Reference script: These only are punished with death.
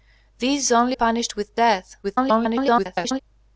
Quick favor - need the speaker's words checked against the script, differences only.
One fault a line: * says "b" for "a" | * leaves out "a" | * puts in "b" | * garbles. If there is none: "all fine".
* leaves out "are"
* garbles